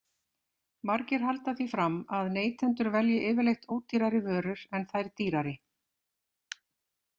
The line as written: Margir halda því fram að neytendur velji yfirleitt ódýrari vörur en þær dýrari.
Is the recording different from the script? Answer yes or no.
no